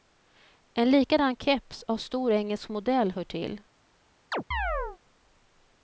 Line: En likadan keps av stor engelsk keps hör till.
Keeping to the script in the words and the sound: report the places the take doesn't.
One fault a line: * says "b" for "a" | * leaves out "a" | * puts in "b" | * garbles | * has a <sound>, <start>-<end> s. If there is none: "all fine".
* says "modell" for "keps"
* has a chirp, 4.3-5.0 s